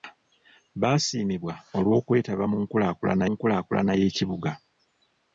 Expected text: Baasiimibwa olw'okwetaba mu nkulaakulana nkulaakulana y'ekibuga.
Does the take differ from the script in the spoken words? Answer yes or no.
no